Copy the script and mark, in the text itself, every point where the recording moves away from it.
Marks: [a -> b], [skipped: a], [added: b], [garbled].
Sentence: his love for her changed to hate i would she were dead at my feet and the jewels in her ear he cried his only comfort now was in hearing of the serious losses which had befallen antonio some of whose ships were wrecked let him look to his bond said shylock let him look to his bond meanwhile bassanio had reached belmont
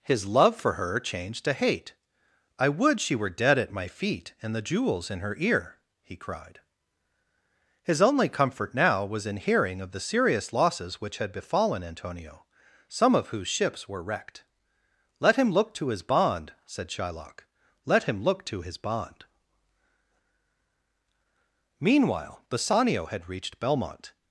his love for her changed to hate i would she were dead at my feet and the jewels in her ear he cried his only comfort now was in hearing of the serious losses which had befallen antonio some of whose ships were wrecked let him look to his bond said shylock let him look to his bond meanwhile bassanio had reached belmont